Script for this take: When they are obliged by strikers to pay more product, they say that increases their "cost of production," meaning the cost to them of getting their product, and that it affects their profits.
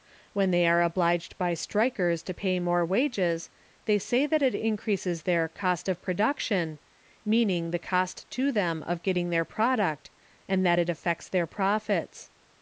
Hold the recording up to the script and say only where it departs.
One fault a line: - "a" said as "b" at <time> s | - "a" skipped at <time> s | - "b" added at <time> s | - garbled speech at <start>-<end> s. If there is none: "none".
- "product" said as "wages" at 2.8 s
- "it" added at 4.4 s